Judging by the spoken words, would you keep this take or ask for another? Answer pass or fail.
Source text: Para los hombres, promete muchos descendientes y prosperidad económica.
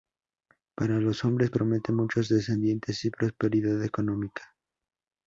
pass